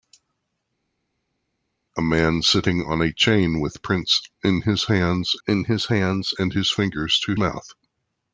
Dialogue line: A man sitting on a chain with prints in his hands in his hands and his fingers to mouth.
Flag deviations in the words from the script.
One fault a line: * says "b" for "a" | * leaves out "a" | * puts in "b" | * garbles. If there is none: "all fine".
all fine